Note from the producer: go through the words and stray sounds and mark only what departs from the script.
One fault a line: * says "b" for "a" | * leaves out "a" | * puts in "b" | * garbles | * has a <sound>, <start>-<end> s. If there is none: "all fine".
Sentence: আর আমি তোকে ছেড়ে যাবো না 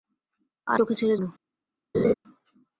* leaves out "আমি"
* leaves out "যাবো"
* has a laugh, 1.9-2.1 s